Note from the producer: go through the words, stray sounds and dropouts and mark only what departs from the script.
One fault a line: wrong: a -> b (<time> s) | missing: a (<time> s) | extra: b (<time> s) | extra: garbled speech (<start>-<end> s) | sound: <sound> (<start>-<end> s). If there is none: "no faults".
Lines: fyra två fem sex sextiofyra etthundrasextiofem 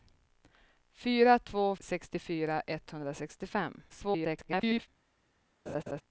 missing: fem sex (1.8 s)
extra: garbled speech (3.9-4.9 s)
sound: laugh (5.7-6.0 s)